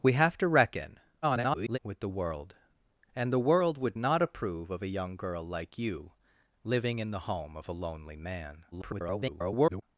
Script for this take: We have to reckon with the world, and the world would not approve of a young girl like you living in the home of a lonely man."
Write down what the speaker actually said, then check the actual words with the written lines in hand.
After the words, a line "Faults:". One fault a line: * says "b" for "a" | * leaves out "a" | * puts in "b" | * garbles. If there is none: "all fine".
We have to reckon [garbled] with the world, and the world would not approve of a young girl like you living in the home of a lonely man." [garbled]
Faults:
* garbles
* garbles